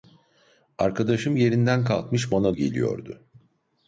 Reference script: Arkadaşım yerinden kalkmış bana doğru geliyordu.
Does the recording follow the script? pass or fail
fail